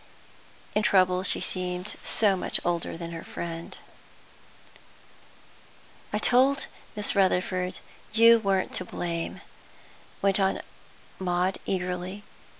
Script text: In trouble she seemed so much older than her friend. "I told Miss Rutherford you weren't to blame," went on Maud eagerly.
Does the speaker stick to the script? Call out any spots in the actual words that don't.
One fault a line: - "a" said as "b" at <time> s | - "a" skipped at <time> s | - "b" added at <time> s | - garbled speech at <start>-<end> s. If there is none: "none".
none